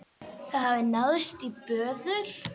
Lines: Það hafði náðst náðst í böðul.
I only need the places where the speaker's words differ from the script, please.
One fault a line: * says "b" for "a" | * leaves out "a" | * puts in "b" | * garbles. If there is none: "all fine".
* leaves out "náðst"